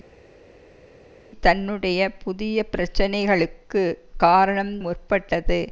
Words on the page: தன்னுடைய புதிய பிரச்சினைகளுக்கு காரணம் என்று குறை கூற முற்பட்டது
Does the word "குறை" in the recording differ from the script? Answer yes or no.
yes